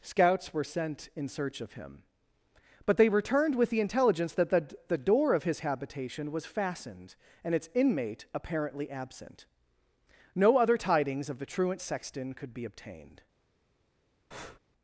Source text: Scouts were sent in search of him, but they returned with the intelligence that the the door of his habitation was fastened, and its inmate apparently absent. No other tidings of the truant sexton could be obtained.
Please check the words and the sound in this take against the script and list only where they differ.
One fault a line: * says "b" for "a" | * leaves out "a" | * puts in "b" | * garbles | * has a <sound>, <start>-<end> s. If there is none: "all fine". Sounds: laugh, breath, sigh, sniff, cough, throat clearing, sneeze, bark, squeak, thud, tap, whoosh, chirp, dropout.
* has a breath, 14.3-14.6 s